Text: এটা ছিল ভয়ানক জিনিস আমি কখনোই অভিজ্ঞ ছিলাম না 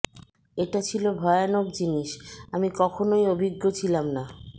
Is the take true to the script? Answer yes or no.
yes